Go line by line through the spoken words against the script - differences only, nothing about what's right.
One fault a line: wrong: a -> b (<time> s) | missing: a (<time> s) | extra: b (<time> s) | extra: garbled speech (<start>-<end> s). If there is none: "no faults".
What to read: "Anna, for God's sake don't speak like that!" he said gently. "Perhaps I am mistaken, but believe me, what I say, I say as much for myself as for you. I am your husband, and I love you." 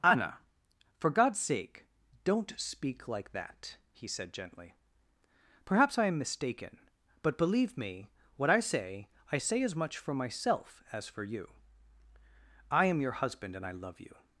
no faults